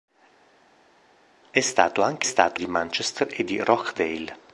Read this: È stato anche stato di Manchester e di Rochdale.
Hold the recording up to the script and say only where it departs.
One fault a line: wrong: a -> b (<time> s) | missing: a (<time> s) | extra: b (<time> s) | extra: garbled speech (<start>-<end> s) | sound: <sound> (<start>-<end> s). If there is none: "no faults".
no faults